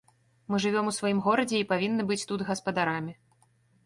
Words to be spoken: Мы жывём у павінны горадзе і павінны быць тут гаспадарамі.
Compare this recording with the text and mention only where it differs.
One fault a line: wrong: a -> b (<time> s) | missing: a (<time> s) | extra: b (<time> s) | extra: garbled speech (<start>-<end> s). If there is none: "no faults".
wrong: павінны -> сваім (1.0 s)